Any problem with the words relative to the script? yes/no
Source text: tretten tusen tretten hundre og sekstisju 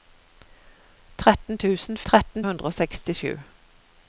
no